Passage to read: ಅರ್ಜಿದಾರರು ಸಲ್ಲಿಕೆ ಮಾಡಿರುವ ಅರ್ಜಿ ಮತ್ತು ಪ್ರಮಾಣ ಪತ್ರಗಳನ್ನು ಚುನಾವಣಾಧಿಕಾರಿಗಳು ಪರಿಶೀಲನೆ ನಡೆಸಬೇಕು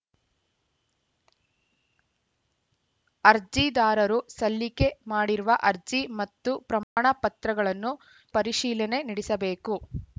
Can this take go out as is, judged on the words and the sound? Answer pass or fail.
fail